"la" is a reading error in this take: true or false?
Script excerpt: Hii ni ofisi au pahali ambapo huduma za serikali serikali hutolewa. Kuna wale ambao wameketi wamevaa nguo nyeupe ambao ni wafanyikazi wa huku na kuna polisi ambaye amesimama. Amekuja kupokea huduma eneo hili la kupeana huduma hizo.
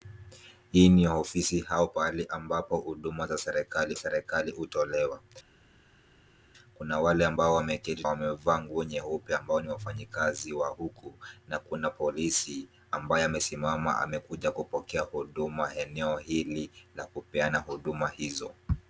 false